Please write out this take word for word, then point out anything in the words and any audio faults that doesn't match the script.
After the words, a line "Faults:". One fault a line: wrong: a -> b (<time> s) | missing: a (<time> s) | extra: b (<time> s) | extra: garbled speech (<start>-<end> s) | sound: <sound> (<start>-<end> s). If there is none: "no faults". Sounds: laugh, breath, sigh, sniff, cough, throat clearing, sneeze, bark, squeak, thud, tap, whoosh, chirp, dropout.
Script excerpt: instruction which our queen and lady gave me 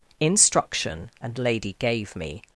instruction and lady gave me
Faults:
missing: which our queen (1.1 s)